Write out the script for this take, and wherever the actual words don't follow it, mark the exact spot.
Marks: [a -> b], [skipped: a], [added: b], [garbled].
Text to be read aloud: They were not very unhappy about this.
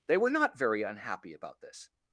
They were not very unhappy about this.